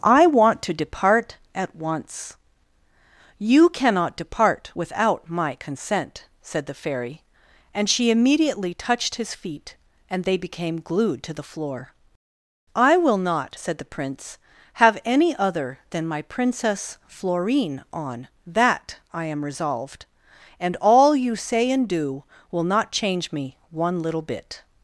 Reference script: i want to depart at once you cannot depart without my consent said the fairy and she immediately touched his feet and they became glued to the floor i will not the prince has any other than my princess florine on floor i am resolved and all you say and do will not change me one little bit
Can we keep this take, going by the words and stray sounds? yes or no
no